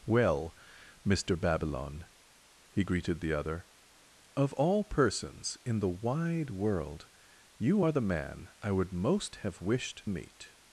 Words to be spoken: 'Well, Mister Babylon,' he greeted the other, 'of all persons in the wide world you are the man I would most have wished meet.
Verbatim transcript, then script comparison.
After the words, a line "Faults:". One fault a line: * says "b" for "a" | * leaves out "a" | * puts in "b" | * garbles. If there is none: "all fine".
'Well, Mister Babylon,' he greeted the other, 'of all persons in the wide world you are the man I would most have wished meet.
Faults:
all fine